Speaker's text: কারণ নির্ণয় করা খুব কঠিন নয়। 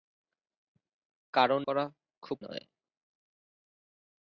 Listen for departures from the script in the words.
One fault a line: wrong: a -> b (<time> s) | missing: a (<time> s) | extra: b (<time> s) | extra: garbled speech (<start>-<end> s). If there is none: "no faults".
missing: নির্ণয় (1.6 s)
missing: কঠিন (2.4 s)